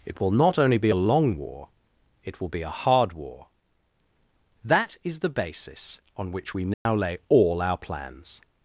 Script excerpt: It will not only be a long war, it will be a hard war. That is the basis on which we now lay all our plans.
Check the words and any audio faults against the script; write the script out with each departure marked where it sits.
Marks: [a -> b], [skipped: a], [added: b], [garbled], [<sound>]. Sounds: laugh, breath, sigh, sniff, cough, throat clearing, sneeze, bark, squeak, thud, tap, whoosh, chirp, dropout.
It will not only be a long war, it will be a hard war. That is the basis on which we now [dropout] lay all our plans.